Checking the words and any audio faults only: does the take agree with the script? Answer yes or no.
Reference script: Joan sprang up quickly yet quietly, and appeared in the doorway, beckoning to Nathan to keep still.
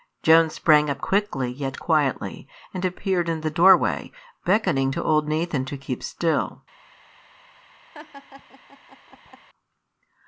no